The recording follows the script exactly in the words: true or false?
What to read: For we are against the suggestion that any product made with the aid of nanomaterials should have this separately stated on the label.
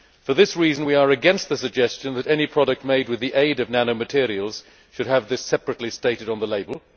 false